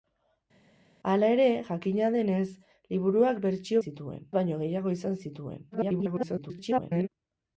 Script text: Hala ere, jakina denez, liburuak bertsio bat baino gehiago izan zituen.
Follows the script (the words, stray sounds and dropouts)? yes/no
no